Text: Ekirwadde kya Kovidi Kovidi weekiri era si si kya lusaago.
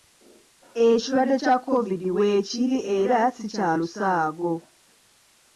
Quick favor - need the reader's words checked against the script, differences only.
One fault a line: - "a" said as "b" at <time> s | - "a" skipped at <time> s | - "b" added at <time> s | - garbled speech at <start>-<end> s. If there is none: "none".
- "Kovidi" skipped at 2.1 s
- "si" skipped at 3.5 s